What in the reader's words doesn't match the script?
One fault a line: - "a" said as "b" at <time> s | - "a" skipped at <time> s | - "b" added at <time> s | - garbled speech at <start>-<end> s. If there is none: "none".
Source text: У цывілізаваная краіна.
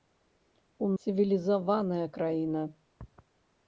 none